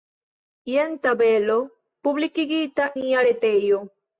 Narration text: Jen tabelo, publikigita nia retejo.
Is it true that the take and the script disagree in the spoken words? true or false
false